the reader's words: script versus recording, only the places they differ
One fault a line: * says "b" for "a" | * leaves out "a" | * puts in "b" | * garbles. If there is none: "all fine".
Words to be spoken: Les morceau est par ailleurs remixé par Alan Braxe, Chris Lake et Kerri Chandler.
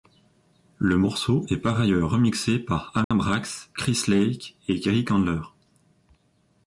* says "Le" for "Les"